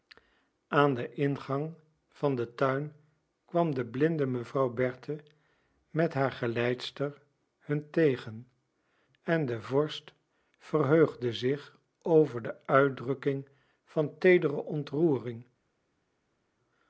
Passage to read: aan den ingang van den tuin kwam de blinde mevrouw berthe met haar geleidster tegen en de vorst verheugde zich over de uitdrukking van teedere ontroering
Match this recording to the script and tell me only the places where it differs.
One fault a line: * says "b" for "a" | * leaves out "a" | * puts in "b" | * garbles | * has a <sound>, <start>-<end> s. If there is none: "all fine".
* puts in "hun"